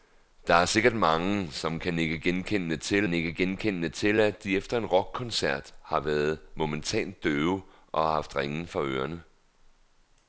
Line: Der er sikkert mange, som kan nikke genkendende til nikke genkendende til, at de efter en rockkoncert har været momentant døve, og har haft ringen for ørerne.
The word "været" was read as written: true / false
true